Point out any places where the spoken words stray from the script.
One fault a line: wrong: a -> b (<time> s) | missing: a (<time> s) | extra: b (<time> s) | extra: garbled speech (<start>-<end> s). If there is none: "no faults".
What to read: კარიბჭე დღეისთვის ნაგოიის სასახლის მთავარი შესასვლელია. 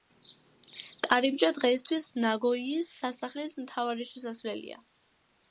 no faults